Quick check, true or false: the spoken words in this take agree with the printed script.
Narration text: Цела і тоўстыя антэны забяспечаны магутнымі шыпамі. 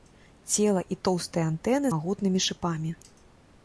false